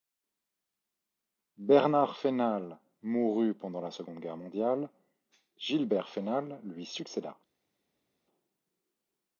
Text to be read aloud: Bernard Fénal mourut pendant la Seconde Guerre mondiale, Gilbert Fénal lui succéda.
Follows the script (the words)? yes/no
yes